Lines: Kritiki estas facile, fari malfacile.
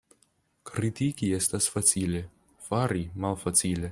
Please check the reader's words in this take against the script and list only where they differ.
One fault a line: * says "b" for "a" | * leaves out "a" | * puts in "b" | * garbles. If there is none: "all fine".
all fine